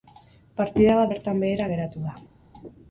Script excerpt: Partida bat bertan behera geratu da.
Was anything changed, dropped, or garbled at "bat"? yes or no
no